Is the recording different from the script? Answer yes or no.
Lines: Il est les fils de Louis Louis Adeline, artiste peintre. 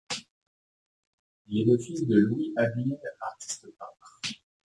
yes